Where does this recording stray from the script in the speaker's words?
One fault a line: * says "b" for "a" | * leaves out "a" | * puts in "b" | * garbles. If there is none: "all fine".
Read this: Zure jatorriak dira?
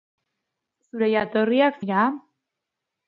all fine